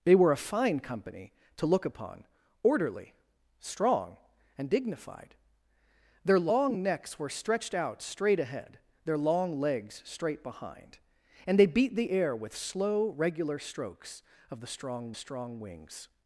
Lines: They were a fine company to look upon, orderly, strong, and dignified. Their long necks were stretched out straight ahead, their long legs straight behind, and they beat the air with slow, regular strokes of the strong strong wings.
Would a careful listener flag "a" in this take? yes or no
no